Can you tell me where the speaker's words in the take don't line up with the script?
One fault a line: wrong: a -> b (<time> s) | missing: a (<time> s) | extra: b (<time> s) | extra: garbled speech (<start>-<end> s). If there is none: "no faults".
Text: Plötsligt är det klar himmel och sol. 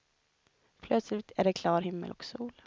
no faults